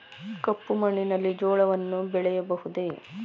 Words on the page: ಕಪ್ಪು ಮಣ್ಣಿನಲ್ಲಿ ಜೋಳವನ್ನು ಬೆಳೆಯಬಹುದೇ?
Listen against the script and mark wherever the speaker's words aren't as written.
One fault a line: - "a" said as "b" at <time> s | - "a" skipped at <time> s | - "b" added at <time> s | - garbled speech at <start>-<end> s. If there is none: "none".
none